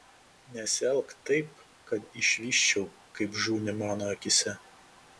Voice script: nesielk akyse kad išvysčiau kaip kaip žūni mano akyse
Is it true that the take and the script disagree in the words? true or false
true